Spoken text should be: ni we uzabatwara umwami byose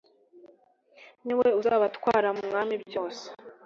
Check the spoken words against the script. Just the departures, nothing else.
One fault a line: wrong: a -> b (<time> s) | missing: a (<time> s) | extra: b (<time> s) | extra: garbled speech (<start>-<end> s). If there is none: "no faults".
no faults